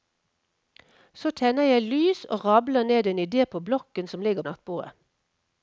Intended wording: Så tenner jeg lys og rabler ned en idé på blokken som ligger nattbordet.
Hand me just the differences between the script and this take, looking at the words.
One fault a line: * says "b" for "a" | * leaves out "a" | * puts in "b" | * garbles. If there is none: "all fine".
all fine